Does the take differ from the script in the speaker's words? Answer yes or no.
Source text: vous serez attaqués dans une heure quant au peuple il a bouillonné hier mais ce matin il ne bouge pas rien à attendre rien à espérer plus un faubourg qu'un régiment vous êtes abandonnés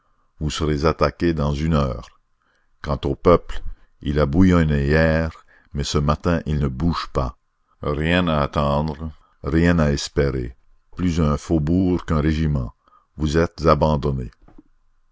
no